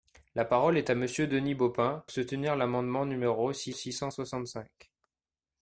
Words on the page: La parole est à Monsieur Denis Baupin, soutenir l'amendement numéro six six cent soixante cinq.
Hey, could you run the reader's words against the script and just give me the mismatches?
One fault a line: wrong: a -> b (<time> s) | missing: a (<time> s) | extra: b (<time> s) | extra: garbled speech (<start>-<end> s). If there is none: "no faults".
no faults